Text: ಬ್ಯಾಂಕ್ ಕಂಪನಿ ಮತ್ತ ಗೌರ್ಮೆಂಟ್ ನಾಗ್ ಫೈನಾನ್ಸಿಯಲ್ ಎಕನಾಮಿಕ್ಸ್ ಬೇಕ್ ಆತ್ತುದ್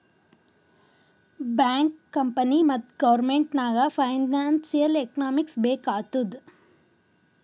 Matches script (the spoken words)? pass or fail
pass